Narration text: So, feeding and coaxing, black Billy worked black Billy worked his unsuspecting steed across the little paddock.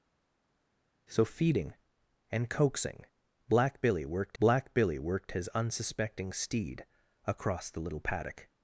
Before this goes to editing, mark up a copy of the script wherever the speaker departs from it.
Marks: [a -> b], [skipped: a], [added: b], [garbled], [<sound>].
So, feeding and coaxing, black Billy worked black Billy worked his unsuspecting steed across the little paddock.